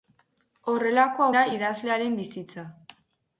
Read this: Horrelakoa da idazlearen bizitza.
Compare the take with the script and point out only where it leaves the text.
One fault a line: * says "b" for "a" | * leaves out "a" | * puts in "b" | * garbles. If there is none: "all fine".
all fine